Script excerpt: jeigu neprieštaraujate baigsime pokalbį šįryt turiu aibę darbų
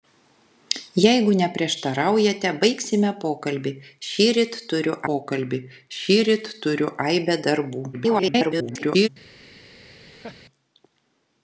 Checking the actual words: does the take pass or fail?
fail